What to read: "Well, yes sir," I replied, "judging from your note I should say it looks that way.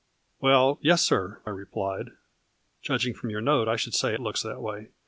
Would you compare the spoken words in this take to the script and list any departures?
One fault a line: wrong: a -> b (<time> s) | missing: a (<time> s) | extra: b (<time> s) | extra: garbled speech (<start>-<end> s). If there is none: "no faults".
no faults